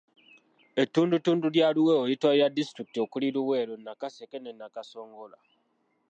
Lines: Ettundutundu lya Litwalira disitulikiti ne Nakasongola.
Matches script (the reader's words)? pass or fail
fail